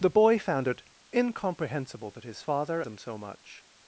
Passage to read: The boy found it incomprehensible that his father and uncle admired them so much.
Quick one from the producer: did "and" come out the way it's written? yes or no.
no